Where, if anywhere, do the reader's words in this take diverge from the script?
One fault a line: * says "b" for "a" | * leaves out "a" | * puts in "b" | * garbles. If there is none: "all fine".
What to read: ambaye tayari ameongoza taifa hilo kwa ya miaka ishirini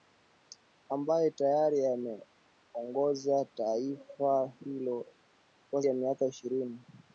all fine